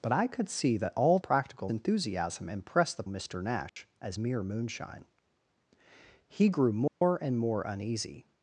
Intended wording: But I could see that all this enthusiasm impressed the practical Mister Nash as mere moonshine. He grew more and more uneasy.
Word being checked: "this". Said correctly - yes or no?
no